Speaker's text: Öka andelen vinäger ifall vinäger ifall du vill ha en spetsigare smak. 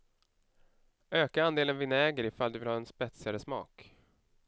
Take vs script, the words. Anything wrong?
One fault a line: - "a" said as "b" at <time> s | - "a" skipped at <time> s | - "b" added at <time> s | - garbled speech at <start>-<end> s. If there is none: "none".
- "vinäger ifall" skipped at 2.5 s